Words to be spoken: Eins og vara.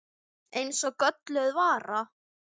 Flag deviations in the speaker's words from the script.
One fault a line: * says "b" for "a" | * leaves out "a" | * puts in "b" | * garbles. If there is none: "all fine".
* puts in "gölluð"